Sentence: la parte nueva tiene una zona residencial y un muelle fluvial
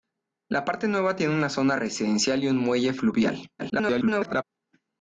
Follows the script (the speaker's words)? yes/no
no